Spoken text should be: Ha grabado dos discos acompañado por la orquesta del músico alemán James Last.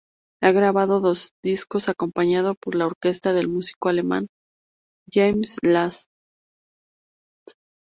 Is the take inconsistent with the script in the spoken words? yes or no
no